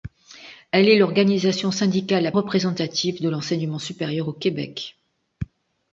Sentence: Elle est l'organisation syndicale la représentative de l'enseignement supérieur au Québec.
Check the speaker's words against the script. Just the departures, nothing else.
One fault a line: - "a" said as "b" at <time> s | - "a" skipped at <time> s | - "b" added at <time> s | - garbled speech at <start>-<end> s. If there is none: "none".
none